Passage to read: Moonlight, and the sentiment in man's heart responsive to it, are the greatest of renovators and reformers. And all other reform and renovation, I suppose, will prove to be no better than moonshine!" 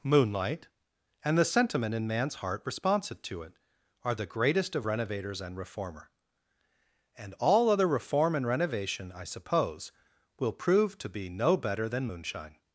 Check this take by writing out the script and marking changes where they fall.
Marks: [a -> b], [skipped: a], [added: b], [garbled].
Moonlight, and the sentiment in man's heart responsive to it, are the greatest of renovators and [reformers. -> reformer] And all other reform and renovation, I suppose, will prove to be no better than moonshine!"